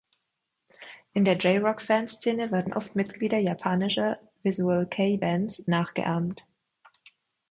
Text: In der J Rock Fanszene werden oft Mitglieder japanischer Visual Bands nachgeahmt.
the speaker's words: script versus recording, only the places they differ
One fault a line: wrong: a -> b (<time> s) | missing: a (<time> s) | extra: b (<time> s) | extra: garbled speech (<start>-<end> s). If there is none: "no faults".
extra: Kei (4.9 s)